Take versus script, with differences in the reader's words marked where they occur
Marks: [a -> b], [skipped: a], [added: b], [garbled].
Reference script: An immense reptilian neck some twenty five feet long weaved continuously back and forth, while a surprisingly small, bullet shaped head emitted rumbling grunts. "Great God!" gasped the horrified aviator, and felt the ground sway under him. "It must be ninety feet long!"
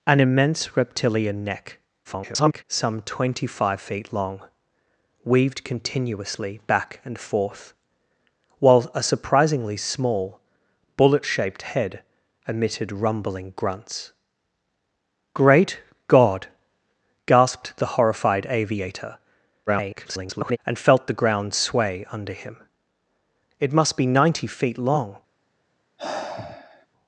An immense reptilian neck [garbled] some twenty five feet long weaved continuously back and forth, while a surprisingly small, bullet shaped head emitted rumbling grunts. "Great God!" gasped the horrified aviator, [garbled] and felt the ground sway under him. "It must be ninety feet long!"